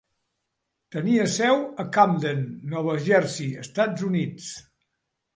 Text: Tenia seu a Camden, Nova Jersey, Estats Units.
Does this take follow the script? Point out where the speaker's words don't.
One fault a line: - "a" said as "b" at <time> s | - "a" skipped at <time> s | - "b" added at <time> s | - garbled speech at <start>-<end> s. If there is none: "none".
none